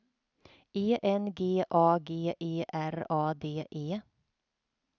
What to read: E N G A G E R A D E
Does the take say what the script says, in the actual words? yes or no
yes